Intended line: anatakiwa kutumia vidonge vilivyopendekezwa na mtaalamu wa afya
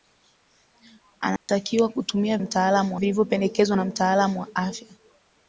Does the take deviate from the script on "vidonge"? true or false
true